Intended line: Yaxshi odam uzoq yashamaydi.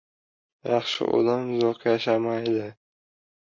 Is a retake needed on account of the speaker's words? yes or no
no